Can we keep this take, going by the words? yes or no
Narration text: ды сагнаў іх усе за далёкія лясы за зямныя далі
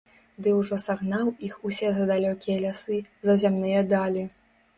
no